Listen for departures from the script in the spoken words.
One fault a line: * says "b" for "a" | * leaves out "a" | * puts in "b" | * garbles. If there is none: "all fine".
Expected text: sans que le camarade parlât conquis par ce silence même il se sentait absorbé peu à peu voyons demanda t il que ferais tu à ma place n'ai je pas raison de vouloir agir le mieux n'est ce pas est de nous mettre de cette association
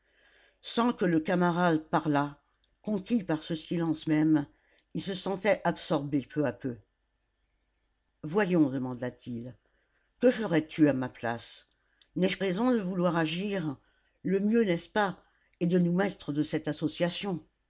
* leaves out "pas"